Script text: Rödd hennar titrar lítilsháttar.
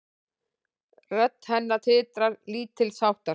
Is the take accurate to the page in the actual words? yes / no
yes